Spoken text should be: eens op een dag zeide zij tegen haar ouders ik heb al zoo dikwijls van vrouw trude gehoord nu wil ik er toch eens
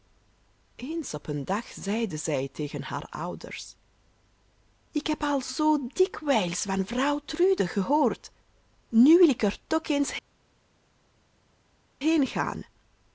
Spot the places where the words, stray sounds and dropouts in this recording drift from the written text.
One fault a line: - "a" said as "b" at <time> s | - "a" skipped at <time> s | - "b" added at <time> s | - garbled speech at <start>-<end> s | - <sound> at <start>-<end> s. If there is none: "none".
none